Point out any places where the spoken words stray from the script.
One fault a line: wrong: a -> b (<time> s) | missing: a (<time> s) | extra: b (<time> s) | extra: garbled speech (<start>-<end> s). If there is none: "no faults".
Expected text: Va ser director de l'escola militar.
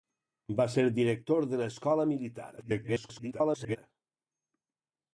extra: garbled speech (2.6-3.8 s)